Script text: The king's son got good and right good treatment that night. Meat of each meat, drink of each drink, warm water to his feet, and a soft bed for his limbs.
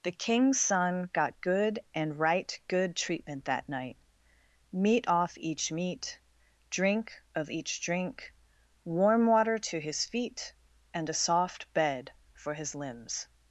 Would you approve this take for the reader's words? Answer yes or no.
no